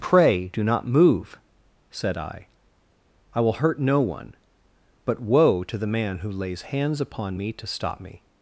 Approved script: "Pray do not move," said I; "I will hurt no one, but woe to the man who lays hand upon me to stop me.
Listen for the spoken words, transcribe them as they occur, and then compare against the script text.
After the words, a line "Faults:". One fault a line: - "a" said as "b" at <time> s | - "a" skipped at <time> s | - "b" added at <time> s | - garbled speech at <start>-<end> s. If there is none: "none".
"Pray do not move," said I; "I will hurt no one, but woe to the man who lays hands upon me to stop me.
Faults:
- "hand" said as "hands" at 6.6 s